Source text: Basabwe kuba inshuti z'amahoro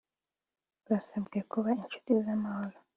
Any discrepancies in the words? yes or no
no